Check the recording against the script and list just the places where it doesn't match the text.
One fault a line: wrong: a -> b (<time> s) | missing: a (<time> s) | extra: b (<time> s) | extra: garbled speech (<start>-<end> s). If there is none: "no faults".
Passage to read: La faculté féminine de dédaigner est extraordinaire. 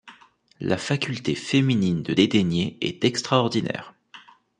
no faults